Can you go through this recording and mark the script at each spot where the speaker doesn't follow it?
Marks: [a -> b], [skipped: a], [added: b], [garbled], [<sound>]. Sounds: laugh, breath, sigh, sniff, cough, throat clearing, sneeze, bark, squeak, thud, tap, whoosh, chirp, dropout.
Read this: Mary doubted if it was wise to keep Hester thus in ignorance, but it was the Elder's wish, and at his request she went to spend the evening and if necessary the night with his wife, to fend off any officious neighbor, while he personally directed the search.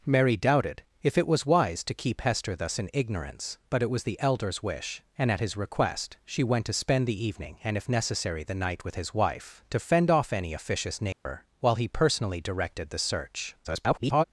Mary doubted if it was wise to keep Hester thus in ignorance, but it was the Elder's wish, and at his request she went to spend the evening and if necessary the night with his wife, to fend off any officious neighbor, [dropout] while he personally directed the search. [garbled]